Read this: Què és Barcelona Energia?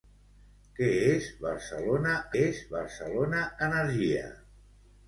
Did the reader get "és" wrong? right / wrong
right